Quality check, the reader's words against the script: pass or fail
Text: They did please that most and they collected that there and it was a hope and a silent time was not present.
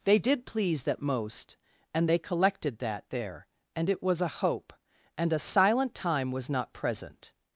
pass